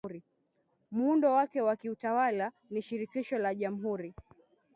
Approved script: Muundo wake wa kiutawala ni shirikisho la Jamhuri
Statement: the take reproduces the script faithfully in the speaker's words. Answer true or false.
true